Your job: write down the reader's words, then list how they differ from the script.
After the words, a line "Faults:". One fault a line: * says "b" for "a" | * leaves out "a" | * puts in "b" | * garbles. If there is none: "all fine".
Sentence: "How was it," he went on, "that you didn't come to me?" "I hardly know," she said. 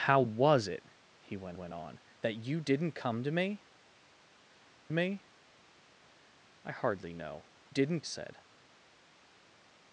"How was it," he went went on, "that you didn't come to me me?" "I hardly know," didn't said.
Faults:
* puts in "went"
* puts in "me"
* says "didn't" for "she"